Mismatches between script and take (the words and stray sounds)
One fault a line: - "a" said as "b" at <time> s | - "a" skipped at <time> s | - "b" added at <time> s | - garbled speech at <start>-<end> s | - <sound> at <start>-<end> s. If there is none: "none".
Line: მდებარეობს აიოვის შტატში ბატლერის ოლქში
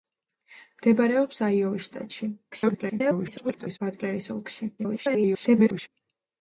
- garbled speech at 2.5-3.8 s
- garbled speech at 4.8-5.9 s